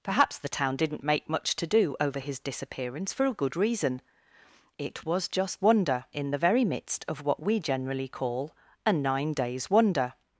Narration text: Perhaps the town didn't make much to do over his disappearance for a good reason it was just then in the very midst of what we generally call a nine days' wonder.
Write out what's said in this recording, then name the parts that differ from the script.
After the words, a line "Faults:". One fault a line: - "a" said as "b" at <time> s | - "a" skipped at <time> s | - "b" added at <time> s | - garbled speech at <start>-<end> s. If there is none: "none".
Perhaps the town didn't make much to do over his disappearance for a good reason it was just wonder in the very midst of what we generally call a nine days' wonder.
Faults:
- "then" said as "wonder" at 5.6 s